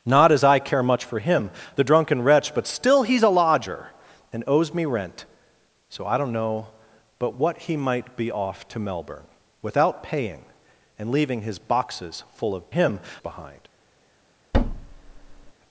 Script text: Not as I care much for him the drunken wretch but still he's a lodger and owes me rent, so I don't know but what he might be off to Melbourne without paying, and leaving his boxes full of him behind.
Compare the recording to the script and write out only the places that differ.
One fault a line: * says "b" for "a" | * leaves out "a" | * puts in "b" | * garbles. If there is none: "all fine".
all fine